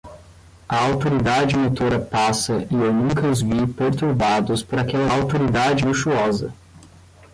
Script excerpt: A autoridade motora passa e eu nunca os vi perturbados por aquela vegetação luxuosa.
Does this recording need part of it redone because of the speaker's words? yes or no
yes